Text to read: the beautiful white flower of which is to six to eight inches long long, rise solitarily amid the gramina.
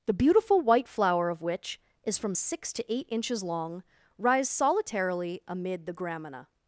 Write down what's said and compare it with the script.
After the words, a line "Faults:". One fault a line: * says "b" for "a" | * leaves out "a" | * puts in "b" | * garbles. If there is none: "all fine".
the beautiful white flower of which is from six to eight inches long, rise solitarily amid the gramina.
Faults:
* says "from" for "to"
* leaves out "long"